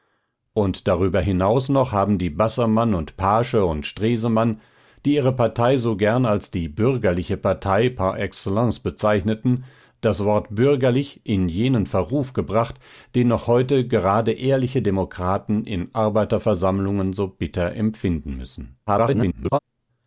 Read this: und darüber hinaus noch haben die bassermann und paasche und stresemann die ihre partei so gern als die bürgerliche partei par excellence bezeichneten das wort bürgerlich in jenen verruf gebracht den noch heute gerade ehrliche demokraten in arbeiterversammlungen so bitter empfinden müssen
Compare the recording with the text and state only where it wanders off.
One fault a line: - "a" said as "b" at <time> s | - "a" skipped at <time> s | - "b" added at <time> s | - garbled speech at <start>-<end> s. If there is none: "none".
- garbled speech at 18.9-19.6 s